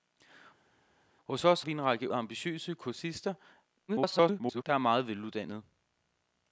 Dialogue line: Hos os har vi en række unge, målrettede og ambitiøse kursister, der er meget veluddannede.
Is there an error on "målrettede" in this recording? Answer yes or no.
yes